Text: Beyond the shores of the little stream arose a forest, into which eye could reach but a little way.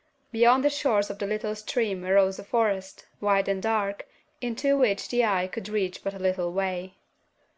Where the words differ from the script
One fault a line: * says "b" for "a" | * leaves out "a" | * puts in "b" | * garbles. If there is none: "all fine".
* puts in "wide and dark"
* puts in "the"